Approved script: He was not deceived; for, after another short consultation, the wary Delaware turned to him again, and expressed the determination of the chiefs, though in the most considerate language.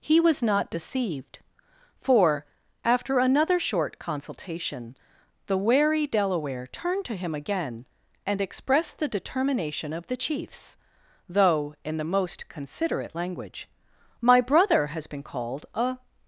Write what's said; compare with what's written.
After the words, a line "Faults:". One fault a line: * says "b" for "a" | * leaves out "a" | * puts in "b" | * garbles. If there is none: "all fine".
He was not deceived; for, after another short consultation, the wary Delaware turned to him again, and expressed the determination of the chiefs, though in the most considerate language. "My brother has been called a
Faults:
* puts in "My brother has been called a"